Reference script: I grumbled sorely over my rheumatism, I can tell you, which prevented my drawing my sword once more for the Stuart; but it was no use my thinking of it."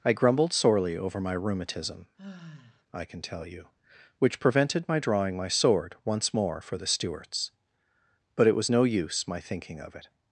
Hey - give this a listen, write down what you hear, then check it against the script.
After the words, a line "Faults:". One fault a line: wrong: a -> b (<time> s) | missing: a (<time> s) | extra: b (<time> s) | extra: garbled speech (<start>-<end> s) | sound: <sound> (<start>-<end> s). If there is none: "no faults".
I grumbled sorely over my rheumatism, I can tell you, which prevented my drawing my sword once more for the Stuarts; but it was no use my thinking of it."
Faults:
sound: sigh (2.2-2.8 s)
wrong: Stuart -> Stuarts (6.9 s)